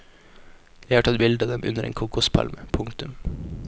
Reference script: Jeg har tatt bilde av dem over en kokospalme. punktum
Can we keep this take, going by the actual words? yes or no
no